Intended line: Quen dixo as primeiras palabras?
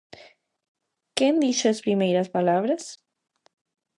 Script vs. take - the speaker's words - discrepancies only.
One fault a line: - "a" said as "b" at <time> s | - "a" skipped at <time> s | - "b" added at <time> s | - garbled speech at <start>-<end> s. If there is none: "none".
none